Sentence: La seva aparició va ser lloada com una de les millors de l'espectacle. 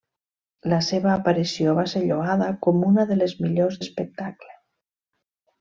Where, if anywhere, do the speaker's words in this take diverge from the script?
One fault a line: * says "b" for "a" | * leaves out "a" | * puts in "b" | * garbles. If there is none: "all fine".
* leaves out "de"